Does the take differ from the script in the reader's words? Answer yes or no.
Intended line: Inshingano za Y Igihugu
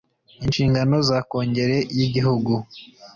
yes